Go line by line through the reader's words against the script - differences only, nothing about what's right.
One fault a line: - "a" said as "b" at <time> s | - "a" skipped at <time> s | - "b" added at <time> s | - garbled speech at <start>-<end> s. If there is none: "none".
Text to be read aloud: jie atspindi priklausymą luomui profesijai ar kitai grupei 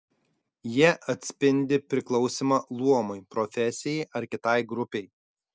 none